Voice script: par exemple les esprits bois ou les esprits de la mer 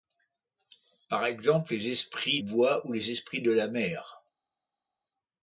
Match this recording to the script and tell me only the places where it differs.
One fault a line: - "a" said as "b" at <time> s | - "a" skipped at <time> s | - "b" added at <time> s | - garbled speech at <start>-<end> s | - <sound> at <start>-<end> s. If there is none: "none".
none